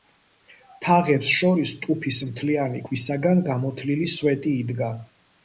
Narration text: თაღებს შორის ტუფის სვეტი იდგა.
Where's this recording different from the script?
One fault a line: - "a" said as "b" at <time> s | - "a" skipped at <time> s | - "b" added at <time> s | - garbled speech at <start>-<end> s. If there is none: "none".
- "მთლიანი ქვისაგან გამოთლილი" added at 2.3 s